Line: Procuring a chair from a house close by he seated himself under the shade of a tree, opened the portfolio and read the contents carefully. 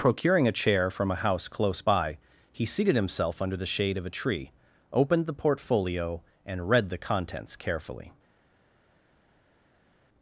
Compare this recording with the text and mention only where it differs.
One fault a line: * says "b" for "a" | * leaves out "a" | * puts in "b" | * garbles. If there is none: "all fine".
all fine